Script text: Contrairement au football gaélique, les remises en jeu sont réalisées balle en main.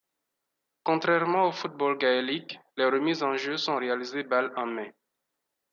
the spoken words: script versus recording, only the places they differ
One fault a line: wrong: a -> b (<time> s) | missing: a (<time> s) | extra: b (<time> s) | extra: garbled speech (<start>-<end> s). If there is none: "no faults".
no faults